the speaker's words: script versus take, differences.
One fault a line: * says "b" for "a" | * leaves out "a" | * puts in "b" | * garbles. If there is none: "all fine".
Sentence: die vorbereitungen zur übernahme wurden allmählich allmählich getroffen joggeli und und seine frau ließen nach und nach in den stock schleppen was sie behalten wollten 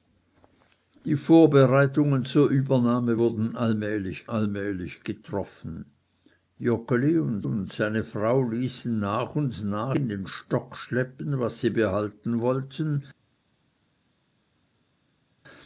all fine